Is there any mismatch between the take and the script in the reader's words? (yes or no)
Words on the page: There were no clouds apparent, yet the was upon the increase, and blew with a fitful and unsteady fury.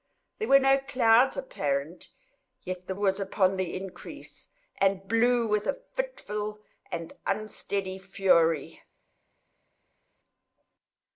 no